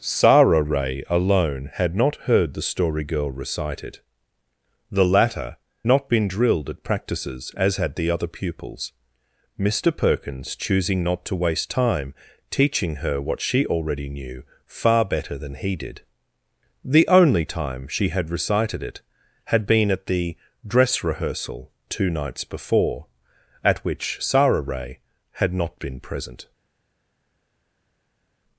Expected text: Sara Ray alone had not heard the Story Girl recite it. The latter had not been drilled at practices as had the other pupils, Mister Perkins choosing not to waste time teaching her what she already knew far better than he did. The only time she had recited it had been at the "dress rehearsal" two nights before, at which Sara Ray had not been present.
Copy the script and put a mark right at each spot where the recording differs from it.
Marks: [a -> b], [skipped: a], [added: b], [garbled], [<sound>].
Sara Ray alone had not heard the Story Girl recite it. The latter [skipped: had] not been drilled at practices as had the other pupils, Mister Perkins choosing not to waste time teaching her what she already knew far better than he did. The only time she had recited it had been at the "dress rehearsal" two nights before, at which Sara Ray had not been present.